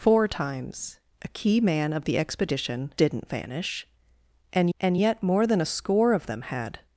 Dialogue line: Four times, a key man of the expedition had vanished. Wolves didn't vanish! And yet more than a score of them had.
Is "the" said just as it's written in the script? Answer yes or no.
yes